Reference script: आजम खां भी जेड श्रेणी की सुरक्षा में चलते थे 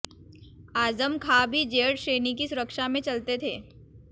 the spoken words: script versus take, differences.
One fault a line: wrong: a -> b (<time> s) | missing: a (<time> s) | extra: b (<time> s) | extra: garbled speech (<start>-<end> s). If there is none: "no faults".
no faults